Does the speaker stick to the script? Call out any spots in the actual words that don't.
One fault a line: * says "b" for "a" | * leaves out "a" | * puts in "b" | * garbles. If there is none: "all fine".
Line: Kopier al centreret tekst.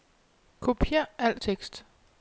* leaves out "centreret"